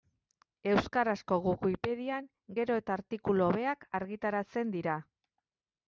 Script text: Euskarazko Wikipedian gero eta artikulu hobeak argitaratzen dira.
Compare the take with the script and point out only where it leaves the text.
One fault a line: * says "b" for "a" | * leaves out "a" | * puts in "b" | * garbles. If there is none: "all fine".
all fine